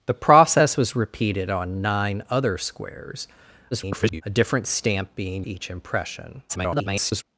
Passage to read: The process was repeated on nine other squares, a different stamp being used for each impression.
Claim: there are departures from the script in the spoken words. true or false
true